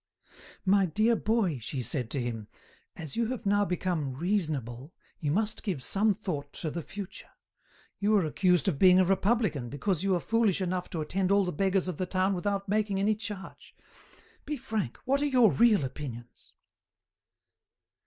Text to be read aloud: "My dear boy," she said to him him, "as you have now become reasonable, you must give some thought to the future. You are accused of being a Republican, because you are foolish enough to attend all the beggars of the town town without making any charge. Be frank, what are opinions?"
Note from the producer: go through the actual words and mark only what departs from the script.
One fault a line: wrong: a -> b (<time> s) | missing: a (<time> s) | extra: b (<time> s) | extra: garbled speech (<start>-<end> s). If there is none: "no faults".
missing: him (2.5 s)
missing: town (12.3 s)
extra: your real (15.2 s)